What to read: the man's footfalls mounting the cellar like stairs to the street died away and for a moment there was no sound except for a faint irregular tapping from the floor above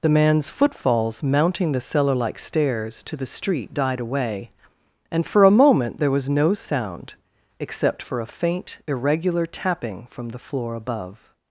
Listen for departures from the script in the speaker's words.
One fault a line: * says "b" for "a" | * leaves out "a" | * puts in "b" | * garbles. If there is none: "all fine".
all fine